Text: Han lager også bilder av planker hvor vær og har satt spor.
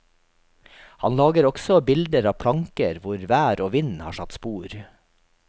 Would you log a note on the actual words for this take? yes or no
yes